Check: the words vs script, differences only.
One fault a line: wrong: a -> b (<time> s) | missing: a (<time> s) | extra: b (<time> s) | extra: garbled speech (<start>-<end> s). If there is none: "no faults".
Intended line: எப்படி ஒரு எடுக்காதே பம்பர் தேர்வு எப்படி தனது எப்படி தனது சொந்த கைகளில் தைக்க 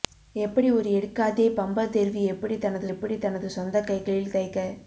no faults